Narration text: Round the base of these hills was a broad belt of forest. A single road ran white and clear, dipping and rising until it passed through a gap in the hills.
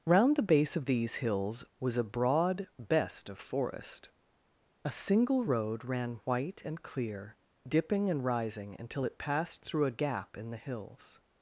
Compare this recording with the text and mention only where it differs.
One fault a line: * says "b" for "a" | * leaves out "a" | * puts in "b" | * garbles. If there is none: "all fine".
* says "best" for "belt"